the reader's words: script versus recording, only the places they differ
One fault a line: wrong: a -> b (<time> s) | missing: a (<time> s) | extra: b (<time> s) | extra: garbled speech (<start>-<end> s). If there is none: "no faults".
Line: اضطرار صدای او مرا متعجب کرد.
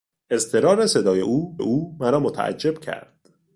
extra: او (1.6 s)